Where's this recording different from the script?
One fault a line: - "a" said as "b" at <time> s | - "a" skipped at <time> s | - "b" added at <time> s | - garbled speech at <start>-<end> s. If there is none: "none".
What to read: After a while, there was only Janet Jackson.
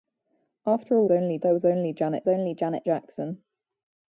- "while" said as "only" at 1.1 s
- "only Janet" added at 2.3 s